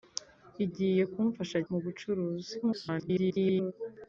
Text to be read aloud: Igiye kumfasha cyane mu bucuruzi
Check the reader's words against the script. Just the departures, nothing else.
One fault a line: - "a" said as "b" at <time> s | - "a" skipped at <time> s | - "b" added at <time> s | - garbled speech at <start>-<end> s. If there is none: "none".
- "cyane" skipped at 1.6 s
- garbled speech at 2.6-3.7 s